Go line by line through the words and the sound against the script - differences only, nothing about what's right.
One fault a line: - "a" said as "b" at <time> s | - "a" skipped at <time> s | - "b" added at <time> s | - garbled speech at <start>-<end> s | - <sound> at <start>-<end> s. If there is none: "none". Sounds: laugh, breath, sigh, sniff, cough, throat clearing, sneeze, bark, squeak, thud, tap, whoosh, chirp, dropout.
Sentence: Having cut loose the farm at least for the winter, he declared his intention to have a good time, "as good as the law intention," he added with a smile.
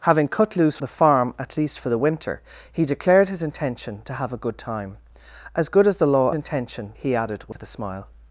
- dropout at 7.5-7.6 s